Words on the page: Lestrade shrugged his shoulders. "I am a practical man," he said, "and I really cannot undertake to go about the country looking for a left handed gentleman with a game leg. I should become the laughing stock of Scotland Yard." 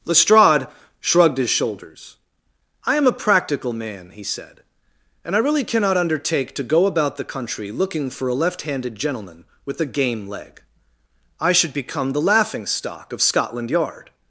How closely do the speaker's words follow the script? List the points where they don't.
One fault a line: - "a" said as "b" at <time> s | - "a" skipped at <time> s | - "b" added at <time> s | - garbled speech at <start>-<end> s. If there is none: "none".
none